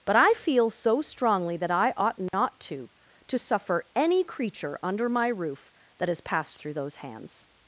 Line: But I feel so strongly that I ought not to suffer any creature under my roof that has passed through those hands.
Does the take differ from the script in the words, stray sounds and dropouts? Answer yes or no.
yes